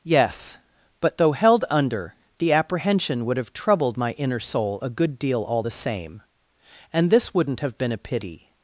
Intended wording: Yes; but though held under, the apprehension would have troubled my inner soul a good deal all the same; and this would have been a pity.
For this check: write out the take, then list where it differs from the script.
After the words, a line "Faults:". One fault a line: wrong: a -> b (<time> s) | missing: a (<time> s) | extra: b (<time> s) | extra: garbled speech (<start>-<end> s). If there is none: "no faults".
Yes; but though held under, the apprehension would have troubled my inner soul a good deal all the same; and this wouldn't have been a pity.
Faults:
wrong: would -> wouldn't (7.3 s)